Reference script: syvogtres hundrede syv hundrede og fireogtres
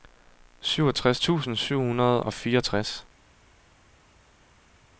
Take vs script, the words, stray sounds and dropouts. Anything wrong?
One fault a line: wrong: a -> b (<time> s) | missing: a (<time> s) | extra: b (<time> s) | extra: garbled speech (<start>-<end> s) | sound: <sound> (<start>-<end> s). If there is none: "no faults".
wrong: hundrede -> tusind (1.2 s)